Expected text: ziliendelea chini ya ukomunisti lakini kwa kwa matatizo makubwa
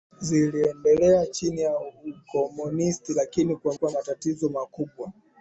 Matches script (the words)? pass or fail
pass